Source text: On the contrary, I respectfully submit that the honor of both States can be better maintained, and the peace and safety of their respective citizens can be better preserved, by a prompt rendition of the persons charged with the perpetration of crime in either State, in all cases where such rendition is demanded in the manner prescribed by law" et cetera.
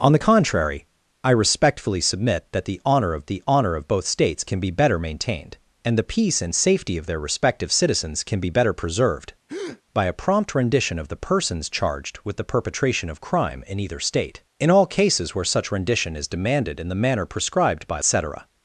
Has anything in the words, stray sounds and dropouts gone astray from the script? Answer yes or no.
yes